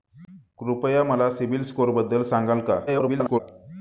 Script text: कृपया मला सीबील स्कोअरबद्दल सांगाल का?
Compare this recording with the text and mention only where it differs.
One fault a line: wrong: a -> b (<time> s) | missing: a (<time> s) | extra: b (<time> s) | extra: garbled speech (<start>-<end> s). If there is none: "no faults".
extra: garbled speech (2.9-3.4 s)